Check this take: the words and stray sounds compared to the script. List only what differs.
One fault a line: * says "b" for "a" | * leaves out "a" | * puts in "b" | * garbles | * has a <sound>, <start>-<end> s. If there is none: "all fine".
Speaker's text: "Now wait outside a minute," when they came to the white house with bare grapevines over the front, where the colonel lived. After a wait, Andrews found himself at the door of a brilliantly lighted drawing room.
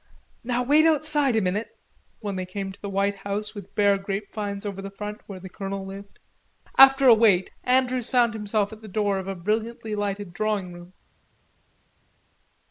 all fine